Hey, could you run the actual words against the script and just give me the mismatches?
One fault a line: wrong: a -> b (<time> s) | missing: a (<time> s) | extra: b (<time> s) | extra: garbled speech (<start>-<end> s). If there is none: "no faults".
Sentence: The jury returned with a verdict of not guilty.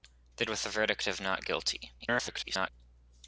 missing: jury returned (0.5 s)
extra: garbled speech (2.0-2.7 s)